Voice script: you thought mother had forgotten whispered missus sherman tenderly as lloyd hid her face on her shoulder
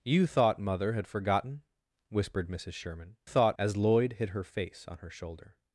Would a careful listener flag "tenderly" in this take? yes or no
yes